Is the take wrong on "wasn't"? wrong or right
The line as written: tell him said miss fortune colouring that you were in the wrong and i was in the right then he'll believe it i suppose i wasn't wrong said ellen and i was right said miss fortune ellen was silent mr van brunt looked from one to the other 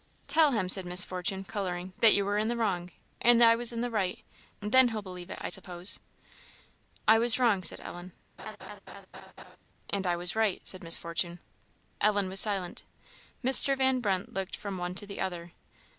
wrong